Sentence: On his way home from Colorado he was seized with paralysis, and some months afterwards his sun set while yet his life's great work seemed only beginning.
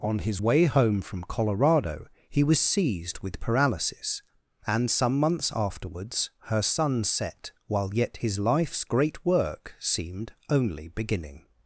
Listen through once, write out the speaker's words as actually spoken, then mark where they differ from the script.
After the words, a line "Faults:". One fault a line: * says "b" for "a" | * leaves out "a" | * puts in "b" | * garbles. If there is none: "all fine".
On his way home from Colorado he was seized with paralysis, and some months afterwards her sun set while yet his life's great work seemed only beginning.
Faults:
* says "her" for "his"